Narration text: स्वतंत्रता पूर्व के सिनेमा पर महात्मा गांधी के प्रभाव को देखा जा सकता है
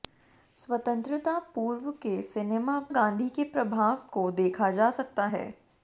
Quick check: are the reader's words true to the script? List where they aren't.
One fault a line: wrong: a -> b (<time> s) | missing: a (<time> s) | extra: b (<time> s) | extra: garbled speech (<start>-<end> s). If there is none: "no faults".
missing: पर महात्मा (2.8 s)